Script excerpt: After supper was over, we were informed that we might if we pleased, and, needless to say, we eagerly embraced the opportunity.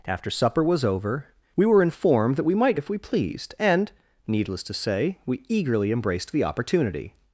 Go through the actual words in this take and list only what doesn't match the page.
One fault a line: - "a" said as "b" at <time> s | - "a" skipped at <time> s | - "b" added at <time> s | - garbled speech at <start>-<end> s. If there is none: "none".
none